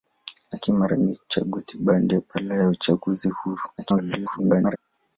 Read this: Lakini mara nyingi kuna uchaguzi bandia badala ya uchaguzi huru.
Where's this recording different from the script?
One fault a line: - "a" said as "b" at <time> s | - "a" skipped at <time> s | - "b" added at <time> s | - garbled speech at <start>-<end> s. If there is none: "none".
- "kuna" skipped at 1.2 s
- garbled speech at 3.8-4.8 s